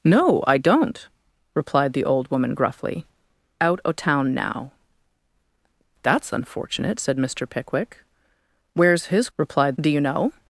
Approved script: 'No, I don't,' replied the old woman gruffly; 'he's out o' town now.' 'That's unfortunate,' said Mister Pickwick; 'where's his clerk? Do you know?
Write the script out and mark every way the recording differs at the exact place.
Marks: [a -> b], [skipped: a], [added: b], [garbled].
'No, I don't,' replied the old woman gruffly; [skipped: 'he's] out o' town now.' 'That's unfortunate,' said Mister Pickwick; 'where's his [clerk? -> replied] Do you know?